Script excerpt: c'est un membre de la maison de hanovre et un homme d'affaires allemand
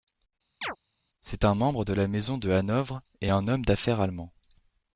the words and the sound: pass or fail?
fail